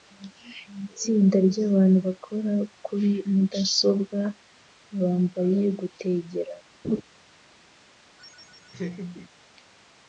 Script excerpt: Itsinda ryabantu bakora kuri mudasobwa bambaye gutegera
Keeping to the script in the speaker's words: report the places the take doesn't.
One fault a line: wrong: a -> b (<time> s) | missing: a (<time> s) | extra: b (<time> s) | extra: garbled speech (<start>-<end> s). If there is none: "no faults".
no faults